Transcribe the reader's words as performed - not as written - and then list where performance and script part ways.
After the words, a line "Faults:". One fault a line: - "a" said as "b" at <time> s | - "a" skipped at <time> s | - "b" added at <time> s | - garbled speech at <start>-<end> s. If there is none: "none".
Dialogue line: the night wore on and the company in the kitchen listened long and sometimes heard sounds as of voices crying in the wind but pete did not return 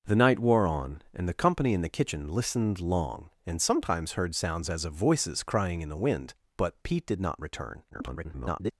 the night wore on and the company in the kitchen listened long and sometimes heard sounds as of voices crying in the wind but pete did not return [garbled]
Faults:
- garbled speech at 7.9-8.7 s